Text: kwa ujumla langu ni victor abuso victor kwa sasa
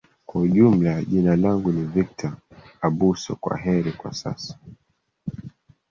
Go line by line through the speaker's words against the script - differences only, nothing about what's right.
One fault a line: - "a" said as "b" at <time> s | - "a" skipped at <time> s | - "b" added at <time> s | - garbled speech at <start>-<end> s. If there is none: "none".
- "jina" added at 1.0 s
- "victor" said as "kwaheri" at 3.4 s